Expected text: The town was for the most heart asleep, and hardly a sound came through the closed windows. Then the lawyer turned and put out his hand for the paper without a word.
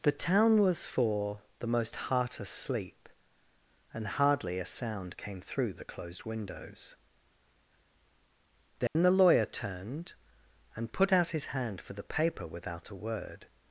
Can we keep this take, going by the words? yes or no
yes